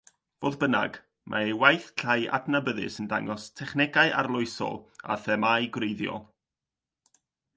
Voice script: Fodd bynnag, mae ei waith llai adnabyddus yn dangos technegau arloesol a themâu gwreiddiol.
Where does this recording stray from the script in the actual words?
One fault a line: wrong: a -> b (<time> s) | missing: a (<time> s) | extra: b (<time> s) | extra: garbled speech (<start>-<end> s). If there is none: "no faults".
no faults